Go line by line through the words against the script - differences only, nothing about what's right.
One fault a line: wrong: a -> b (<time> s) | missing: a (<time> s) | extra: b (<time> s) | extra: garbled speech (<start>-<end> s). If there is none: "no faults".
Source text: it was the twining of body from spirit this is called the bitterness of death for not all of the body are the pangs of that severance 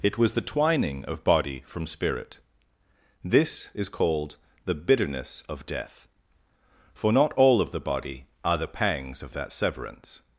no faults